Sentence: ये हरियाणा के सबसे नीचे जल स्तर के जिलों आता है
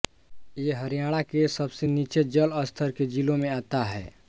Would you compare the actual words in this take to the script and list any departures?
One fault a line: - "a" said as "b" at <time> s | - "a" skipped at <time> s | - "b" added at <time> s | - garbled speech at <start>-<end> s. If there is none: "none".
- "में" added at 3.4 s